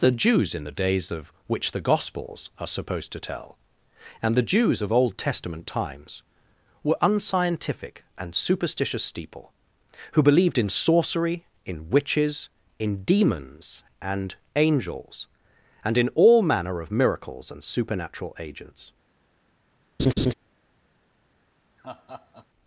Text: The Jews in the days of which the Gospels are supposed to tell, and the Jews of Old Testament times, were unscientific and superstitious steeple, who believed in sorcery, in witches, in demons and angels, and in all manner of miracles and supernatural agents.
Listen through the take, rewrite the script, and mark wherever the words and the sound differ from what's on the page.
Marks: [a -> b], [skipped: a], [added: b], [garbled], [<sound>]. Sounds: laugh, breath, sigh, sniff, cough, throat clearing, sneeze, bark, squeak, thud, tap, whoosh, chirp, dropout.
The Jews in the days of which the Gospels are supposed to tell, and the Jews of Old Testament times, were unscientific and superstitious steeple, who believed in sorcery, in witches, in demons and angels, and in all manner of miracles and supernatural agents. [laugh] [laugh]